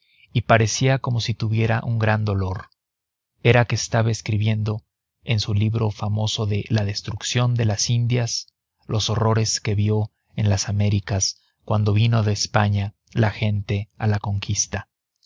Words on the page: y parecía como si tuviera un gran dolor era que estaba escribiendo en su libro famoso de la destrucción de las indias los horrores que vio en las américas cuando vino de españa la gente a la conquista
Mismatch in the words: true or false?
false